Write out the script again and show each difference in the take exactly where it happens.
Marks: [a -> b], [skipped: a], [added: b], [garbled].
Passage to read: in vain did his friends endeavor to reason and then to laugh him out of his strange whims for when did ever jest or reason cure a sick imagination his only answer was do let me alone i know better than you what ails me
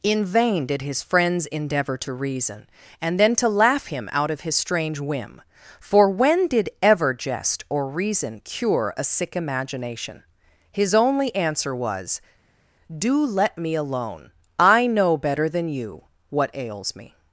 in vain did his friends endeavor to reason and then to laugh him out of his strange [whims -> whim] for when did ever jest or reason cure a sick imagination his only answer was do let me alone i know better than you what ails me